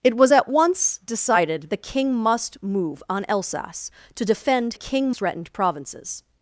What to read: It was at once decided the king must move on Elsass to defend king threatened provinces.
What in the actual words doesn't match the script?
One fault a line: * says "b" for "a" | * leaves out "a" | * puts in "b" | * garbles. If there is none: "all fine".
all fine